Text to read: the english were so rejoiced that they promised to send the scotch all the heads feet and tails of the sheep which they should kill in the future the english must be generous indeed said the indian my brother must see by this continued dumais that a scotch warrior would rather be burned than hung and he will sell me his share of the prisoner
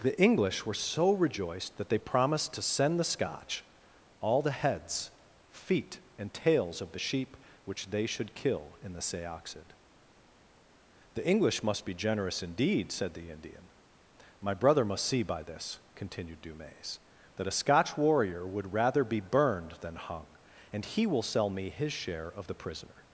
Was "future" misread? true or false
true